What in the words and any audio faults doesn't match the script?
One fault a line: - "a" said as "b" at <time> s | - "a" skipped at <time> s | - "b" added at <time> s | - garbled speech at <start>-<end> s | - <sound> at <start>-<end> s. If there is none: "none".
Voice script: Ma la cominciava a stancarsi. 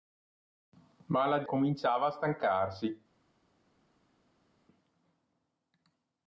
none